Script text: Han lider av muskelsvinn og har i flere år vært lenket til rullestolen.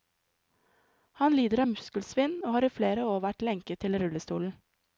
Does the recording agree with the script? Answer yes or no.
yes